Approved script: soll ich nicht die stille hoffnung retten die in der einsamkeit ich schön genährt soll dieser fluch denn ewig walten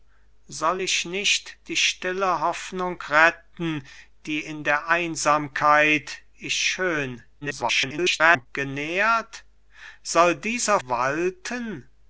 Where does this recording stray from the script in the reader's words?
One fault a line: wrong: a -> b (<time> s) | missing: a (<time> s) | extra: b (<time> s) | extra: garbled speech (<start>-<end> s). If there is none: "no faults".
extra: garbled speech (7.4-8.5 s)
missing: fluch denn ewig (10.8 s)